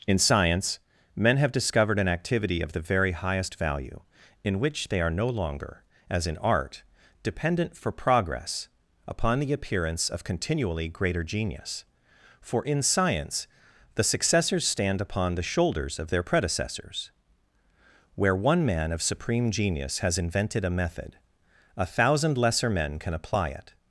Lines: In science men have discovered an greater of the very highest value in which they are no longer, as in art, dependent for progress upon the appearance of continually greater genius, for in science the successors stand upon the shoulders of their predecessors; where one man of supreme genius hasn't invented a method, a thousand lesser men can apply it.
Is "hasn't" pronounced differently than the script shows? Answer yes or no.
yes